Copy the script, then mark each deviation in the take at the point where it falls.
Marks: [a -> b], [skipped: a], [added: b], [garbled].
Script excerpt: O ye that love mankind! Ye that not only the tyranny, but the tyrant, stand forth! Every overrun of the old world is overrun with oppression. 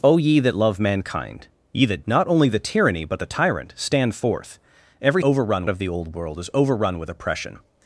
O ye that love mankind! Ye that not only the tyranny, but the tyrant, stand forth! Every overrun of the old world is overrun with oppression.